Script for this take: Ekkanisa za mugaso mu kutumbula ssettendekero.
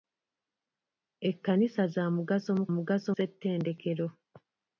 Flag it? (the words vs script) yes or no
yes